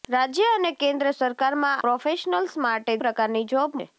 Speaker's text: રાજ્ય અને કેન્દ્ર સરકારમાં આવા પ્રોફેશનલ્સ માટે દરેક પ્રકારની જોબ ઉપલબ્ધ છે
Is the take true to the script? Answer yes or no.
no